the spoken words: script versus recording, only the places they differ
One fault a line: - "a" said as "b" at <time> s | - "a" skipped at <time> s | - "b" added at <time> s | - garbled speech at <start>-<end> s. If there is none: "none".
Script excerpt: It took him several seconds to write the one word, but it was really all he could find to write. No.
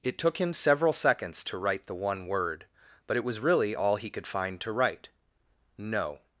none